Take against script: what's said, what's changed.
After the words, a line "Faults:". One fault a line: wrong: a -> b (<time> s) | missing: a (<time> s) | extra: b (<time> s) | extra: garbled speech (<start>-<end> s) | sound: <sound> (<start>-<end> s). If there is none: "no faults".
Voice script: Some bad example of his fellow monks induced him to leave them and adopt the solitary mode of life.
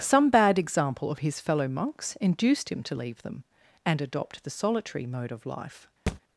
Some bad example of his fellow monks induced him to leave them and adopt the solitary mode of life.
Faults:
sound: thud (6.1-6.2 s)